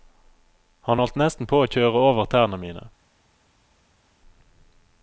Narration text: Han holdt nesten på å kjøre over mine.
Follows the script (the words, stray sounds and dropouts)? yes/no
no